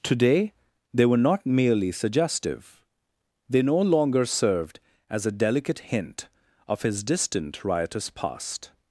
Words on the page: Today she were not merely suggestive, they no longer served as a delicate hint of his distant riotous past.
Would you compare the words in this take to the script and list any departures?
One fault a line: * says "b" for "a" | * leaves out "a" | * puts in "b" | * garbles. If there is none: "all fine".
* says "they" for "she"